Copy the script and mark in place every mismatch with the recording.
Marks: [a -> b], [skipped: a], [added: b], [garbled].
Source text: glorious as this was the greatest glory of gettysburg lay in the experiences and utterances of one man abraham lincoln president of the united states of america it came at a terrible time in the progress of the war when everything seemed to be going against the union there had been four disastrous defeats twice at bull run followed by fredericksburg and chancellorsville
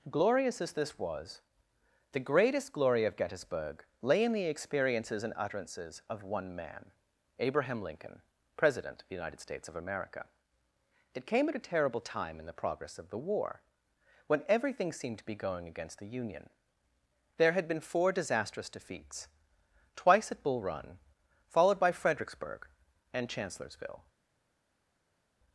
glorious as this was the greatest glory of gettysburg lay in the experiences and utterances of one man abraham lincoln president of the united states of america it came at a terrible time in the progress of the war when everything seemed to be going against the union there had been four disastrous defeats twice at bull run followed by fredericksburg and chancellorsville